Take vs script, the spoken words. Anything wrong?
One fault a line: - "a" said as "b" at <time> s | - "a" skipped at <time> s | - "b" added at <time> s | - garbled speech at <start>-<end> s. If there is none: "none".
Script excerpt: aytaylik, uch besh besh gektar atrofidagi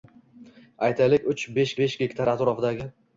none